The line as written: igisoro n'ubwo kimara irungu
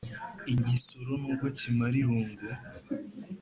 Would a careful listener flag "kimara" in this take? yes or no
no